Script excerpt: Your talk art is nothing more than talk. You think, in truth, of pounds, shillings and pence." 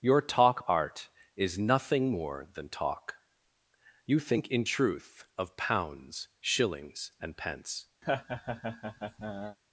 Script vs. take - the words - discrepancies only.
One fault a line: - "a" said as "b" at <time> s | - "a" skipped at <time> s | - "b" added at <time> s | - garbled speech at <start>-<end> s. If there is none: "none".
none